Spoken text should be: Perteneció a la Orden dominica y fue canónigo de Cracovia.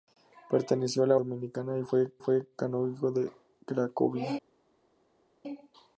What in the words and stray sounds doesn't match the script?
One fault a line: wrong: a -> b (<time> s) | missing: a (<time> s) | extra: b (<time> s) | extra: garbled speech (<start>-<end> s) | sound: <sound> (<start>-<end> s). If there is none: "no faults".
missing: Orden (1.1 s)
extra: fue (2.2 s)